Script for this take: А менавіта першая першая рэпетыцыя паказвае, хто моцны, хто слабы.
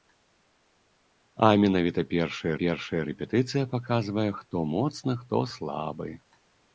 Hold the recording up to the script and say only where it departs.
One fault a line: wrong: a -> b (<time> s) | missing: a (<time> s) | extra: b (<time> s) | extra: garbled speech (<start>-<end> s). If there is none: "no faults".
no faults